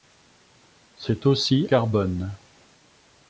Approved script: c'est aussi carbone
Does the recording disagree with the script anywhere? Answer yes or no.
no